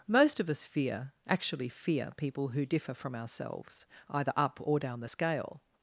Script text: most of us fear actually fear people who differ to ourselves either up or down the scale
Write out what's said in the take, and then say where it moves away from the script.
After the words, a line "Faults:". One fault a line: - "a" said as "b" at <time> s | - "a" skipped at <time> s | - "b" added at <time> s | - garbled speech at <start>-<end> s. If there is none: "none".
most of us fear actually fear people who differ from ourselves either up or down the scale
Faults:
- "to" said as "from" at 3.0 s